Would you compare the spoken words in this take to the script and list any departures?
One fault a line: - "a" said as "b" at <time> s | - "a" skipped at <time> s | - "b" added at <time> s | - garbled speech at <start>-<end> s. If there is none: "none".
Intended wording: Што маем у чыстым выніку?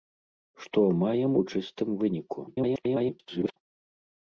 - garbled speech at 2.5-3.6 s